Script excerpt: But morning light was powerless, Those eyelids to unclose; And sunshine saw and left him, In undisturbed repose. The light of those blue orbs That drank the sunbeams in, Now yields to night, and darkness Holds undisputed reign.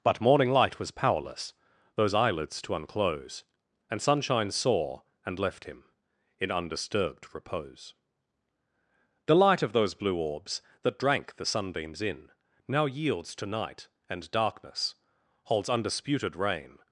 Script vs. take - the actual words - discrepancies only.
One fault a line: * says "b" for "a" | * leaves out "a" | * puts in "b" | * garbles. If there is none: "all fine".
all fine